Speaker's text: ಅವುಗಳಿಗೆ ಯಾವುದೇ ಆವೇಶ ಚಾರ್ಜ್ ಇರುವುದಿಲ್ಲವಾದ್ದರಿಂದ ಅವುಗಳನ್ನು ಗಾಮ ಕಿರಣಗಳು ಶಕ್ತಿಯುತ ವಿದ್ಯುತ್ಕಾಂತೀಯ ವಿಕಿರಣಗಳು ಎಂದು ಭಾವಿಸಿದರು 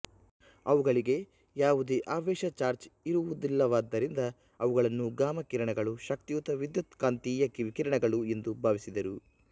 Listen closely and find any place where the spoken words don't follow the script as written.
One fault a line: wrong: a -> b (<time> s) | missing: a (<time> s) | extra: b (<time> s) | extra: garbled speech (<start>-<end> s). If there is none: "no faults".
no faults